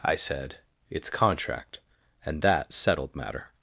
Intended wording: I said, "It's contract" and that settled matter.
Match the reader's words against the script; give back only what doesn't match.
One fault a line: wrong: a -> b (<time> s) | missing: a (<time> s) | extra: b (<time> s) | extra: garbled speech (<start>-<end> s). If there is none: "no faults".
no faults